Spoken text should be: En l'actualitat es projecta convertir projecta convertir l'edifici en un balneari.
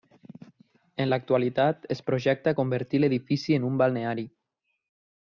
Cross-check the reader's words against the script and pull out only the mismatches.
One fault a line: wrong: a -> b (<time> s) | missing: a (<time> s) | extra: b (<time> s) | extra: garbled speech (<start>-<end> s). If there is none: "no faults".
missing: projecta convertir (3.0 s)